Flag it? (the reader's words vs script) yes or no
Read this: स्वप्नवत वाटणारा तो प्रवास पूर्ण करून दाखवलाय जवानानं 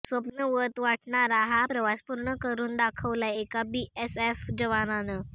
yes